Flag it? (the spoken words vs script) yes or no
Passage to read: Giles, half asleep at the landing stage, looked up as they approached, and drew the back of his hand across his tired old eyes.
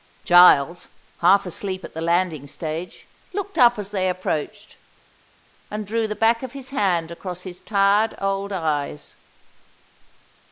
no